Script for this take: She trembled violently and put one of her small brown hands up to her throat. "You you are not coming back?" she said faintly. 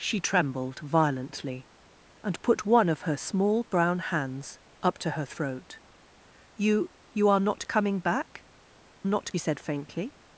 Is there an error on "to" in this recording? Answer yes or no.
no